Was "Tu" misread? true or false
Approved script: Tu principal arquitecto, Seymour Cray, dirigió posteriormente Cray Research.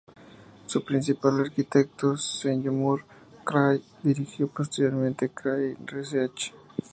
true